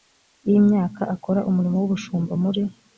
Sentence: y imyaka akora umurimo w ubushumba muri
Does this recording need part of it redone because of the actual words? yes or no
no